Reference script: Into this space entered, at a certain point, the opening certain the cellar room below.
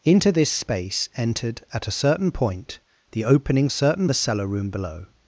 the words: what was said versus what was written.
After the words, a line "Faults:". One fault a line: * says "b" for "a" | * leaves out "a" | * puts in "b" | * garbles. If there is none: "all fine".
Into this space entered, at a certain point, the opening certain the cellar room below.
Faults:
all fine